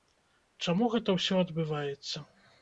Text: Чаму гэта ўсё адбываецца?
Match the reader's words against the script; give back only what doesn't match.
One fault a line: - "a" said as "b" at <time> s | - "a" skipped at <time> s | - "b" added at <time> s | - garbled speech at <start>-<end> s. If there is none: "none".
none